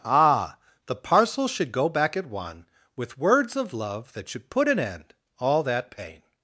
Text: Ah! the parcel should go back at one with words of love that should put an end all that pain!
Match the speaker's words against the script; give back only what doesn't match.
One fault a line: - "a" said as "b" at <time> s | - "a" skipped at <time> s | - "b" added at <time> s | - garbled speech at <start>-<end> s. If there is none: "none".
none